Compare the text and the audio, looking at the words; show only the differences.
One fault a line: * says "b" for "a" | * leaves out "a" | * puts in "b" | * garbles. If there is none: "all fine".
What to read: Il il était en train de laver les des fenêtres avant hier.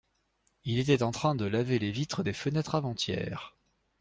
* leaves out "il"
* puts in "vitres"